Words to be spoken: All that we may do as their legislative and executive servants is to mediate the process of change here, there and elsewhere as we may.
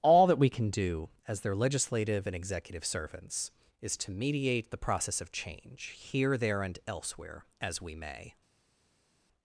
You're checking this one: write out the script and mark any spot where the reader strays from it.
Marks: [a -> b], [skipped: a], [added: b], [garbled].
All that we [may -> can] do as their legislative and executive servants is to mediate the process of change here, there and elsewhere as we may.